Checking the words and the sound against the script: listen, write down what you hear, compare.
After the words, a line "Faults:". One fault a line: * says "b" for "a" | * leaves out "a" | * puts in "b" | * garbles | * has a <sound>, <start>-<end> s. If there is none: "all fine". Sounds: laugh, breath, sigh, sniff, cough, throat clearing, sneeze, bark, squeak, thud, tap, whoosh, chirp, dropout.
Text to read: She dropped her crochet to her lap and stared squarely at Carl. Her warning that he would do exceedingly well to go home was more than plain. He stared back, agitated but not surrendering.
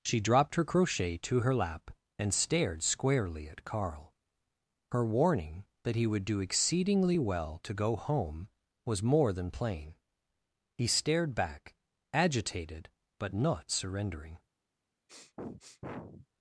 She dropped her crochet to her lap and stared squarely at Carl. Her warning that he would do exceedingly well to go home was more than plain. He stared back, agitated but not surrendering.
Faults:
* has a sniff, 15.1-16.3 s